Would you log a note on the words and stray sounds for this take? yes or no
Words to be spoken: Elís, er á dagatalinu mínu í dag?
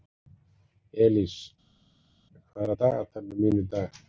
yes